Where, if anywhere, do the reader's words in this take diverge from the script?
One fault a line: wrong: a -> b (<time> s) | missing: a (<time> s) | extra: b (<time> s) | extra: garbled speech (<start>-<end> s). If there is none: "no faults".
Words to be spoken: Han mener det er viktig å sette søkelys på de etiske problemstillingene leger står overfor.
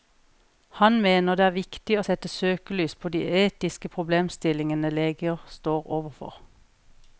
no faults